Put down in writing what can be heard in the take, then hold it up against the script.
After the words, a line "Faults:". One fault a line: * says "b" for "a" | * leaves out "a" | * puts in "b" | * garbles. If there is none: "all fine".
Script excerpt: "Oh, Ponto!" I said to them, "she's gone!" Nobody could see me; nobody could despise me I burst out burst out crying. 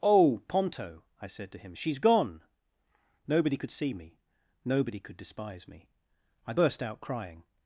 "Oh, Ponto!" I said to him, "she's gone!" Nobody could see me; nobody could despise me I burst out crying.
Faults:
* says "him" for "them"
* leaves out "burst out"